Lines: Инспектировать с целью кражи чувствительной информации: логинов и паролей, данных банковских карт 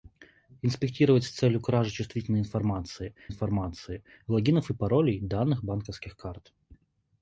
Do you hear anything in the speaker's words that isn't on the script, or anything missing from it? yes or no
yes